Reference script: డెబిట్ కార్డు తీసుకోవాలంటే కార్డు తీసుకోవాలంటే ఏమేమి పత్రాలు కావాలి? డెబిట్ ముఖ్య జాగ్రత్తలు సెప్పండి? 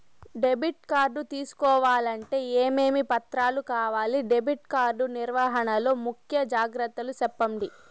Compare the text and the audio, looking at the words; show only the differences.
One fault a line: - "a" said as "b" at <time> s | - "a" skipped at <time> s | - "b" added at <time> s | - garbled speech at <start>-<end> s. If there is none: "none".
- "కార్డు తీసుకోవాలంటే" skipped at 2.4 s
- "కార్డు నిర్వహణ లో" added at 4.8 s